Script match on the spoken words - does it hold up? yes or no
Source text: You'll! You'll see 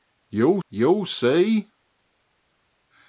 yes